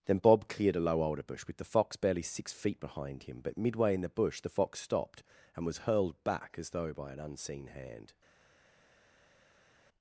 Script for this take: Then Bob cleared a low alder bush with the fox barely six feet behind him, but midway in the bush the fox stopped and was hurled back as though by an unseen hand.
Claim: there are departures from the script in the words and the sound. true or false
false